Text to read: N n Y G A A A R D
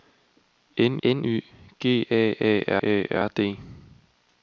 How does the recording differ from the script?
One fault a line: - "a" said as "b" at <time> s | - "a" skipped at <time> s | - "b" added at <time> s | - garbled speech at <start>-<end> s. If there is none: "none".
none